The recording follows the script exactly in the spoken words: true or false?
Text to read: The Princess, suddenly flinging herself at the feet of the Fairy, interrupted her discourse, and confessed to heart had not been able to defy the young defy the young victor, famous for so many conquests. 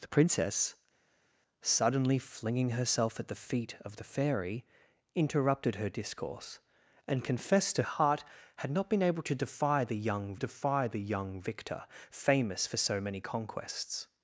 true